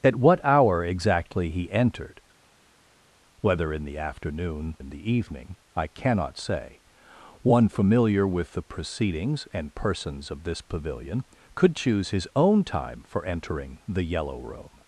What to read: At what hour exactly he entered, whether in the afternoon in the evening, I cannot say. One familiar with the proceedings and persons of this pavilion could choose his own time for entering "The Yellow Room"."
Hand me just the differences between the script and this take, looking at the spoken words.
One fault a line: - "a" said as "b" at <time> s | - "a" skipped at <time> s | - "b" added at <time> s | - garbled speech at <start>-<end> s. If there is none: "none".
none